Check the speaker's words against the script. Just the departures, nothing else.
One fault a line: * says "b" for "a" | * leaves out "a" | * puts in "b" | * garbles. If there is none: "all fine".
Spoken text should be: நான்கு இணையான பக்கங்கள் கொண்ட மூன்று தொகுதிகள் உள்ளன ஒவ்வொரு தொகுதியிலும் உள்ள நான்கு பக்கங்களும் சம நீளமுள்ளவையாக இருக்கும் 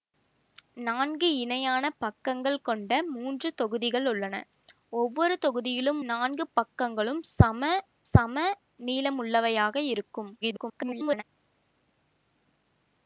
* leaves out "உள்ள"
* puts in "சம"
* garbles